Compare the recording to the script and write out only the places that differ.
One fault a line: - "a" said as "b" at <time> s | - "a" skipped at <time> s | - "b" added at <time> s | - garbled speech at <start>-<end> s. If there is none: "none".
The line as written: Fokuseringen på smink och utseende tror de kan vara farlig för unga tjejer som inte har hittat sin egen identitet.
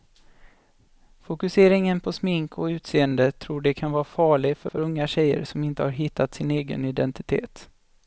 - "för" added at 4.7 s